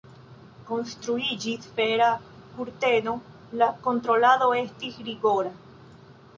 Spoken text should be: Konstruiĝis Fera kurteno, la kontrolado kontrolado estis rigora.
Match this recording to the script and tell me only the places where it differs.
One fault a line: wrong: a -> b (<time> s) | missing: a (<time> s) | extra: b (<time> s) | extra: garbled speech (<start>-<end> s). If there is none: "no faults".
missing: kontrolado (4.5 s)